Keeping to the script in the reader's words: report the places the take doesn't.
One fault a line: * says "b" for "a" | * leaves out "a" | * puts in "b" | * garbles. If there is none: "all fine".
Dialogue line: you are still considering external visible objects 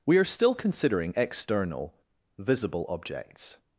* says "we" for "you"